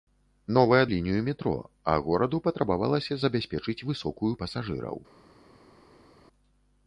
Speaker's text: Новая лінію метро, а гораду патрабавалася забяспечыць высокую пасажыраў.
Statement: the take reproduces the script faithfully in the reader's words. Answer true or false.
true